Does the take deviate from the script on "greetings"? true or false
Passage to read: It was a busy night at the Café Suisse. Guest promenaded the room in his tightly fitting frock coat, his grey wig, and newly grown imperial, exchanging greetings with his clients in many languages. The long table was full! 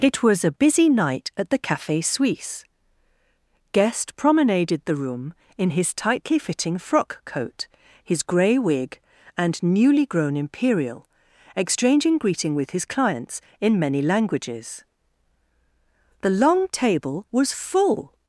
true